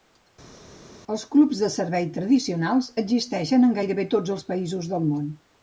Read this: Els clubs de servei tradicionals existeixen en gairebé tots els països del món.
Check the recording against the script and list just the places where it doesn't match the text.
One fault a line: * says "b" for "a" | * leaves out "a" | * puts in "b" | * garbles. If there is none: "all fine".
all fine